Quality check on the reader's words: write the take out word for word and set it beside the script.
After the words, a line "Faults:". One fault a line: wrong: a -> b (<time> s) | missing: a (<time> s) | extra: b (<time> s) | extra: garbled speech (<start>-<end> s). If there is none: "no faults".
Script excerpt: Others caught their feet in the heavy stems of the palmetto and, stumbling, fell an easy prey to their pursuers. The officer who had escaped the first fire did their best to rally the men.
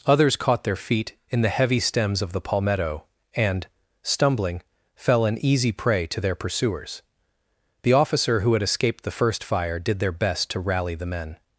Others caught their feet in the heavy stems of the palmetto and, stumbling, fell an easy prey to their pursuers. The officer who had escaped the first fire did their best to rally the men.
Faults:
no faults